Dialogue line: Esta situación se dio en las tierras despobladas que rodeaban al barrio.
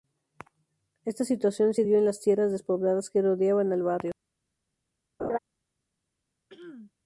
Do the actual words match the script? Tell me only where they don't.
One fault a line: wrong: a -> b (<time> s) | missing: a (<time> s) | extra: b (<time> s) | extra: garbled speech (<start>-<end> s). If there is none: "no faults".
no faults